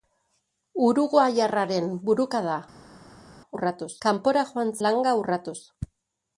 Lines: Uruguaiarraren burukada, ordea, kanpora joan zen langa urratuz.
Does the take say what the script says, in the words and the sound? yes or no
no